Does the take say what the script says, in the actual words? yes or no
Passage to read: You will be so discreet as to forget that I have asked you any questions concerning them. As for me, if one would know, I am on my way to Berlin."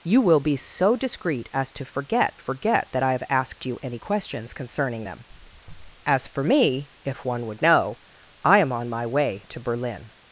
no